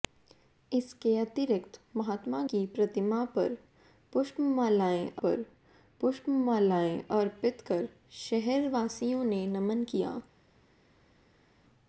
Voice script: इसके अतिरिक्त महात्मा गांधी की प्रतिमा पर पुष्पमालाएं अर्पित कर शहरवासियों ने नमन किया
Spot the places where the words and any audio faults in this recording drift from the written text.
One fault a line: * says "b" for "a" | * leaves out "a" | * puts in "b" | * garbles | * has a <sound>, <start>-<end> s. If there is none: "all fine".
* leaves out "गांधी"
* puts in "पर पुष्पमालाएं"